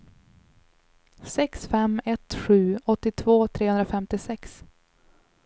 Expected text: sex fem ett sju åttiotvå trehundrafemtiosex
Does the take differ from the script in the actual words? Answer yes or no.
no